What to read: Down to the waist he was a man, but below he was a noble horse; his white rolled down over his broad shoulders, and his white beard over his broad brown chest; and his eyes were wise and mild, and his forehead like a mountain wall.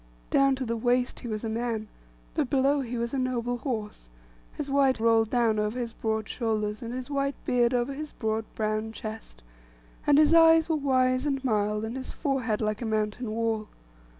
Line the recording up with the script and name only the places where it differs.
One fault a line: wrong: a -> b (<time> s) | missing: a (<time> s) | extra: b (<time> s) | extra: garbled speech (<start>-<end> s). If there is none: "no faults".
no faults